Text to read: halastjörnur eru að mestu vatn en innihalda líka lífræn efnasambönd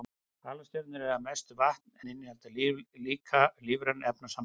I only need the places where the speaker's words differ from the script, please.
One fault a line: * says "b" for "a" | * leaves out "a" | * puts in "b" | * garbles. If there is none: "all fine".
all fine